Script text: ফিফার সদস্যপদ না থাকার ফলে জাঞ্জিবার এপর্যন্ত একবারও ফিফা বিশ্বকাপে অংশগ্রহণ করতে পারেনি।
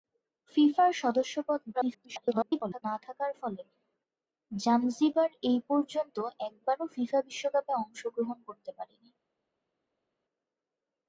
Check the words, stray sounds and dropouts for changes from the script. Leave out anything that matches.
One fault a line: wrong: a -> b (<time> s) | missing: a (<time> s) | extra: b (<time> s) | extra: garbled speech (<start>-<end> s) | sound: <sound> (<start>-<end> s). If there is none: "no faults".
extra: garbled speech (1.7-2.8 s)